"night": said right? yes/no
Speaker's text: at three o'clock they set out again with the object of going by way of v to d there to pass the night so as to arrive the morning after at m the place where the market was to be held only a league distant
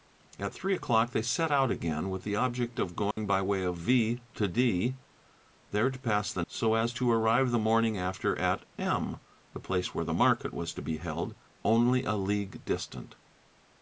no